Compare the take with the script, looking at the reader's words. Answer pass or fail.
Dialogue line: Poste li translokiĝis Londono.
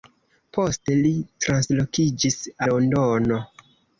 pass